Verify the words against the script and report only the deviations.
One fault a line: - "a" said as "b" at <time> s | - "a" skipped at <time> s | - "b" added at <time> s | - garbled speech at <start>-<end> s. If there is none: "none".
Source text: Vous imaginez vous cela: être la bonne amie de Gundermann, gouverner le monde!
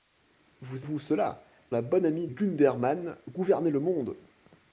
- "imaginez" skipped at 0.9 s
- "être" skipped at 1.4 s
- "de" skipped at 2.3 s